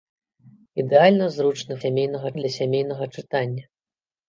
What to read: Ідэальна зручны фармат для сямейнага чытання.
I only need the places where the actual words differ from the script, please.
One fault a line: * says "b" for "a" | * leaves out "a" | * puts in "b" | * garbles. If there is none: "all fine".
* says "сямейнага" for "фармат"